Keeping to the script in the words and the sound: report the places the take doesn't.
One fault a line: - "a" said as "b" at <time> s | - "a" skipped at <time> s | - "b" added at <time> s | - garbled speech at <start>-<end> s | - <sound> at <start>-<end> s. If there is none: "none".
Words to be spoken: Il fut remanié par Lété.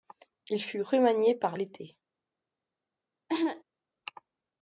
- cough at 3.3-3.6 s